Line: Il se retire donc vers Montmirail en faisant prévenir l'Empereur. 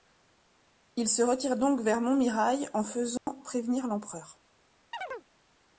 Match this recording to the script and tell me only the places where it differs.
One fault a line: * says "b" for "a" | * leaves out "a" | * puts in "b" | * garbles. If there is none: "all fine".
all fine